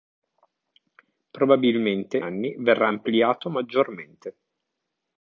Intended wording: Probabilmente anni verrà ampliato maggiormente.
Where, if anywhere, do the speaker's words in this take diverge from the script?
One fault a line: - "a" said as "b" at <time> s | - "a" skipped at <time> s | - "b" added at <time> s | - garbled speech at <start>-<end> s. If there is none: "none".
none